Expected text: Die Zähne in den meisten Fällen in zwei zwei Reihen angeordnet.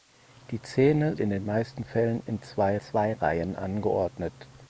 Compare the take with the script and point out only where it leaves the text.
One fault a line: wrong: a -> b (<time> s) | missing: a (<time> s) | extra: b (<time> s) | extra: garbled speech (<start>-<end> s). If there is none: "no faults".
no faults